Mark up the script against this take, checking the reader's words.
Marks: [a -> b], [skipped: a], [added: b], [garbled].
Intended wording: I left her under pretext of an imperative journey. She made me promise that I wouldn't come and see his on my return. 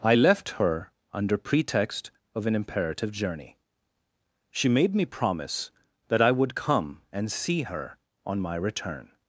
I left her under pretext of an imperative journey. She made me promise that I [wouldn't -> would] come and see [his -> her] on my return.